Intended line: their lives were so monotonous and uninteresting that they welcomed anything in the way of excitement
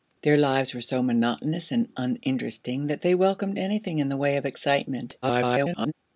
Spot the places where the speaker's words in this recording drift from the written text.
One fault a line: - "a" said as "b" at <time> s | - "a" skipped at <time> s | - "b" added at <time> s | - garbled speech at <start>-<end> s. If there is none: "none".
- garbled speech at 5.2-5.9 s